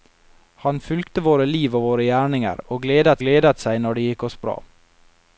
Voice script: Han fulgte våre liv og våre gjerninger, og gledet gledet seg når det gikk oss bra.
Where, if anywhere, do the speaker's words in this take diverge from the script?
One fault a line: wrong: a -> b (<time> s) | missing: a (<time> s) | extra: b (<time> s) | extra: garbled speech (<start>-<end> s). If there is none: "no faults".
no faults